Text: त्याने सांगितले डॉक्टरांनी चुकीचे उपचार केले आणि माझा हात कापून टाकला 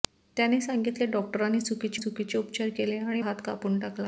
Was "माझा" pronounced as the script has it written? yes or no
no